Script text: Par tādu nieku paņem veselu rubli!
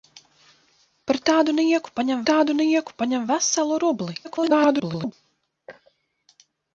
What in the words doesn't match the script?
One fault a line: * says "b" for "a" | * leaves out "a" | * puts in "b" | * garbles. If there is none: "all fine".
* puts in "tādu nieku paņem"
* garbles